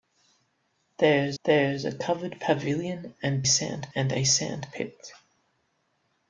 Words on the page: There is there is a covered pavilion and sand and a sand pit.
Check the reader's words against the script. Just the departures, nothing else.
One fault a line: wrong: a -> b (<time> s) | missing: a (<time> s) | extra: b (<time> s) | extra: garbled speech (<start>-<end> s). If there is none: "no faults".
no faults